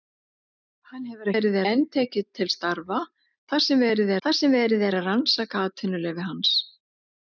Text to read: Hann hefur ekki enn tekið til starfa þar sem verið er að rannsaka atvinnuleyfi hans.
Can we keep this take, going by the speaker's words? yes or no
no